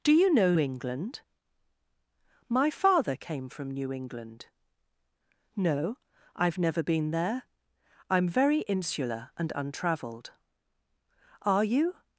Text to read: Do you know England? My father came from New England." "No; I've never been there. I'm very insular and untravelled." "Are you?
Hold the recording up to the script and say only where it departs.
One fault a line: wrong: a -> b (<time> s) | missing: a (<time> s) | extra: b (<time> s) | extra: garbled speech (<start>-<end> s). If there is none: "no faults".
no faults